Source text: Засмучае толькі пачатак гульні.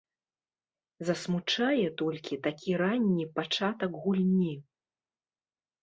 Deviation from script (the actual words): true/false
true